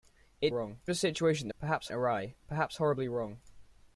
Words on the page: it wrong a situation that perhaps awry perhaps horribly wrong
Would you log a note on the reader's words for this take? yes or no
no